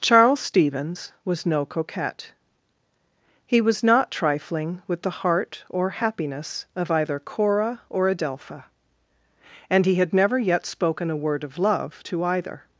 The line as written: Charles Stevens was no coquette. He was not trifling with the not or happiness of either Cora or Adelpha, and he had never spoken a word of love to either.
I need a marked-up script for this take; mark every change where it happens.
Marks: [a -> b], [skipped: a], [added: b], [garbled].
Charles Stevens was no coquette. He was not trifling with the [not -> heart] or happiness of either Cora or Adelpha, and he had never [added: yet] spoken a word of love to either.